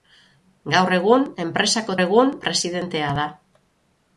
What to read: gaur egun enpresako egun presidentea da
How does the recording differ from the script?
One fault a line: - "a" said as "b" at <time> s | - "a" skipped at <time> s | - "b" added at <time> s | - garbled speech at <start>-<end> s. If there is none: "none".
none